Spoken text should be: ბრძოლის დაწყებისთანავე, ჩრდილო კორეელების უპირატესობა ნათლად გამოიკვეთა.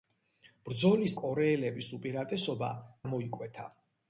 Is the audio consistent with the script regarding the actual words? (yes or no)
no